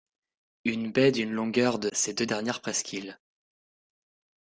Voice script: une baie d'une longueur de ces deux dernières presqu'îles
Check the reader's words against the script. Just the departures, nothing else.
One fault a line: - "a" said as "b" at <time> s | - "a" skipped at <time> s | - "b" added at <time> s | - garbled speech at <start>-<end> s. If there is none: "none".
none